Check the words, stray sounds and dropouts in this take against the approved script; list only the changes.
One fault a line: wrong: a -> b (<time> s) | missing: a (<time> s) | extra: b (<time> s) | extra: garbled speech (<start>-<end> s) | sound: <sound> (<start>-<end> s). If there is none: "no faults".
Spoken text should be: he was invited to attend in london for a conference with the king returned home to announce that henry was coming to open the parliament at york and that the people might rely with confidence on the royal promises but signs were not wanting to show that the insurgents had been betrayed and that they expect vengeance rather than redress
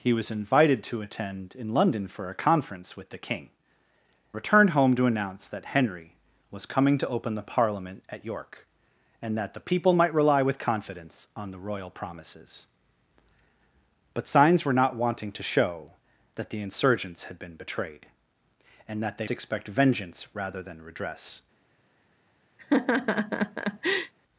sound: laugh (22.6-24.1 s)